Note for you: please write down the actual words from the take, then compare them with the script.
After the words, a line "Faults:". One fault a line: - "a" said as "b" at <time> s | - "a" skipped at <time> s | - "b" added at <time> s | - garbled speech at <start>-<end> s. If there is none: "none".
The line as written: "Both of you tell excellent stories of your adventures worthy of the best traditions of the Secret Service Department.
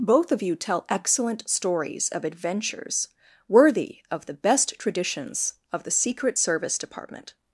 "Both of you tell excellent stories of adventures worthy of the best traditions of the Secret Service Department.
Faults:
- "your" skipped at 2.2 s